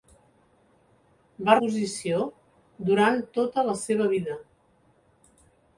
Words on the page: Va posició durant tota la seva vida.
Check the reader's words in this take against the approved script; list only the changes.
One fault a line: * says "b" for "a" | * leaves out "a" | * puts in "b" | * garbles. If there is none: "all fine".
all fine